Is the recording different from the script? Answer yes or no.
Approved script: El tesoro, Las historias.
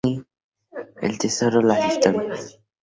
no